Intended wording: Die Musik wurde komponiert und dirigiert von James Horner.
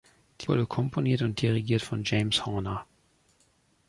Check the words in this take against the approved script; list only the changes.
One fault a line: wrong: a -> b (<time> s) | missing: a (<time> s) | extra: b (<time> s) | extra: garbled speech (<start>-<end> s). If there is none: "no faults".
missing: Musik (0.5 s)